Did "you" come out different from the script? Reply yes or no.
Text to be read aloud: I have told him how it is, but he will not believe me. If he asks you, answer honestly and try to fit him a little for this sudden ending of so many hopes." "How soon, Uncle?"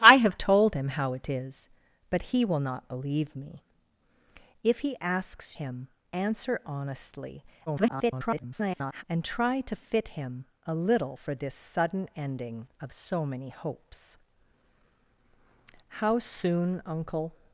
yes